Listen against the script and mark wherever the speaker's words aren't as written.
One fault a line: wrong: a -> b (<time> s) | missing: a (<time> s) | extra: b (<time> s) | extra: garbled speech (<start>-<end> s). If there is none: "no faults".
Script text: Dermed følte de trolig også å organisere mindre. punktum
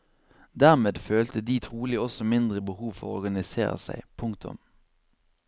extra: mindre behov for (2.2 s)
wrong: mindre -> seg (3.9 s)